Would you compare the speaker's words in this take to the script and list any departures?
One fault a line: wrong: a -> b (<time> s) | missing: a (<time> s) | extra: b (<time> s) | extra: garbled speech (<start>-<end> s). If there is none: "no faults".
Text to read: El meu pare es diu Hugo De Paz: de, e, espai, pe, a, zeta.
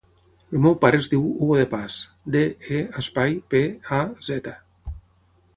no faults